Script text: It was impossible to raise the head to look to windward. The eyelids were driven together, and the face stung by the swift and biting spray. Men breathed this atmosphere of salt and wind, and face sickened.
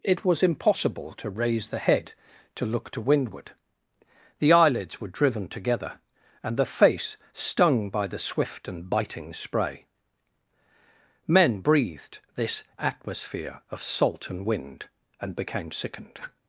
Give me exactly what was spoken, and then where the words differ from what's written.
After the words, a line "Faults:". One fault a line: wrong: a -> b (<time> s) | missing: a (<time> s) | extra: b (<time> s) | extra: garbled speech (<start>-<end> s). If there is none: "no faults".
It was impossible to raise the head to look to windward. The eyelids were driven together, and the face stung by the swift and biting spray. Men breathed this atmosphere of salt and wind, and became sickened.
Faults:
wrong: face -> became (15.3 s)